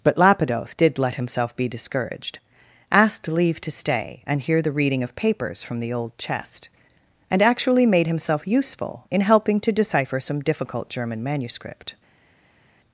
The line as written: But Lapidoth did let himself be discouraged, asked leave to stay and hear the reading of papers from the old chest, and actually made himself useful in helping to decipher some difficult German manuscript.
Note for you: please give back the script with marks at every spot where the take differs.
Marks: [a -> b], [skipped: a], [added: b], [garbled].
But Lapidoth did let himself be discouraged, asked leave to stay and hear the reading of papers from the old chest, and actually made himself useful in helping to decipher some difficult German manuscript.